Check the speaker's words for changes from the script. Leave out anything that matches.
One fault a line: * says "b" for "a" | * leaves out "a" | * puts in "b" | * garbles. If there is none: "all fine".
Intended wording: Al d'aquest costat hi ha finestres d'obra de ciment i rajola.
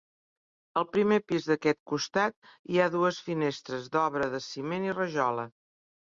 * puts in "primer pis"
* puts in "dues"